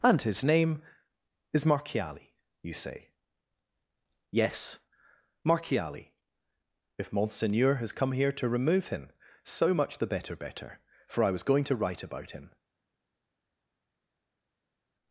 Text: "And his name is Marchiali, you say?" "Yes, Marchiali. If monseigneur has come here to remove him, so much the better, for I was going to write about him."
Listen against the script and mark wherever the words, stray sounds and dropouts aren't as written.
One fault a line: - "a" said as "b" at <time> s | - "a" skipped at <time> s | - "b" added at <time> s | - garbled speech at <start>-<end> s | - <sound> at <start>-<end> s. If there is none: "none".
- "better" added at 10.4 s